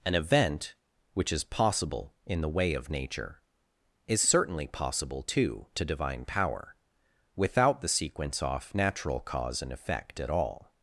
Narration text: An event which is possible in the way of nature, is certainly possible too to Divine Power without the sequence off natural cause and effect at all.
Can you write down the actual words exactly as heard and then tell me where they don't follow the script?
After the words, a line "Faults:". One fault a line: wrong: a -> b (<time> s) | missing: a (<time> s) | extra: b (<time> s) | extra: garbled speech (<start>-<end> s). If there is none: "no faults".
An event which is possible in the way of nature, is certainly possible too to Divine Power without the sequence off natural cause and effect at all.
Faults:
no faults